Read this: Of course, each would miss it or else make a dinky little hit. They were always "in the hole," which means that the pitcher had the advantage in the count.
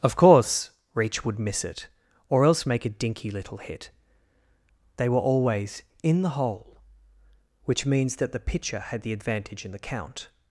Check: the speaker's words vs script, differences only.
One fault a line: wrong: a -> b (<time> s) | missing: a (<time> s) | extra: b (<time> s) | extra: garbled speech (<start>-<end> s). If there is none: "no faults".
wrong: each -> reach (0.9 s)